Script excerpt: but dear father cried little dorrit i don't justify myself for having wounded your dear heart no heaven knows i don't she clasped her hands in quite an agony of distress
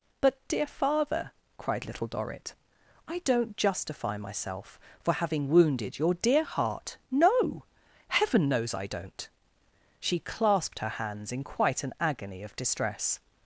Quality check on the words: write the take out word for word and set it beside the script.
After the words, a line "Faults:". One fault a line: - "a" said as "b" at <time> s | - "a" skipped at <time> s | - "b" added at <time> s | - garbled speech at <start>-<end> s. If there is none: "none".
but dear father cried little dorrit i don't justify myself for having wounded your dear heart no heaven knows i don't she clasped her hands in quite an agony of distress
Faults:
none